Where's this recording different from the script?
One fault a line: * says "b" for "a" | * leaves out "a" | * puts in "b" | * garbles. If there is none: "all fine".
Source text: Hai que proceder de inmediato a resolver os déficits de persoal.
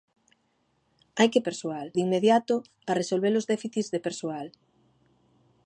* says "persoal" for "proceder"